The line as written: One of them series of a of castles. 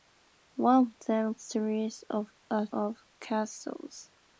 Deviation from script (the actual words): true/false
false